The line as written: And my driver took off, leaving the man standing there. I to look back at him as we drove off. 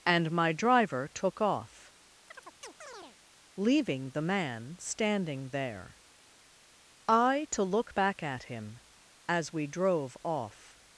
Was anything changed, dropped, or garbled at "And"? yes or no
no